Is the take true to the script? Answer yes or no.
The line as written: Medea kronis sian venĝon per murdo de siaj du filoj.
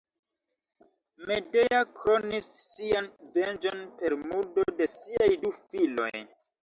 yes